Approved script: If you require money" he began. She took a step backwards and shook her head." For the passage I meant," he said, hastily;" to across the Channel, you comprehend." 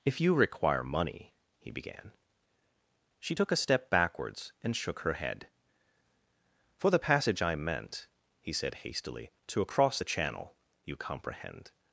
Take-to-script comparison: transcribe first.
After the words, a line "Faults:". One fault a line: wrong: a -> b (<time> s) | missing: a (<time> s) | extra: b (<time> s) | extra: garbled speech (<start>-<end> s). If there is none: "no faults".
If you require money" he began. She took a step backwards and shook her head." For the passage I meant," he said, hastily;" to across the Channel, you comprehend."
Faults:
no faults